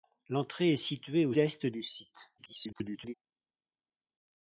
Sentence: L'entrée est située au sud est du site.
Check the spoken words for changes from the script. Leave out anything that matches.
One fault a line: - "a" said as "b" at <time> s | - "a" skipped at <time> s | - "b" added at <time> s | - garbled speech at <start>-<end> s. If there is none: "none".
- "sud" skipped at 1.4 s
- garbled speech at 2.4-3.1 s